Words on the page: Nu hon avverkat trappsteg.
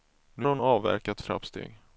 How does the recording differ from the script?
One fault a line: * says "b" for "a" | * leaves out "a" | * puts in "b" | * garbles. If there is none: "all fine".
all fine